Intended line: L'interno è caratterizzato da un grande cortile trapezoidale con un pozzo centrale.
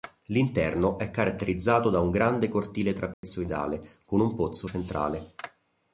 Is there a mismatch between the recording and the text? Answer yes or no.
no